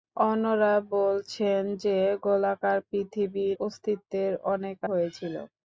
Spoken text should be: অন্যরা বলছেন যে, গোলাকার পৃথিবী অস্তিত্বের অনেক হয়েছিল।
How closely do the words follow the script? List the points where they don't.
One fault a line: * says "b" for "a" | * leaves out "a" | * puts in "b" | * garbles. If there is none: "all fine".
all fine